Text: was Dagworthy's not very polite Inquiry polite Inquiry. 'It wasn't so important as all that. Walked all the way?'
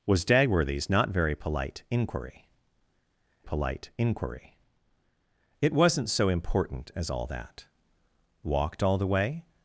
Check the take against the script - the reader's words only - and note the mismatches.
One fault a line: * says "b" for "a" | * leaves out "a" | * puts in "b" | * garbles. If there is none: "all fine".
all fine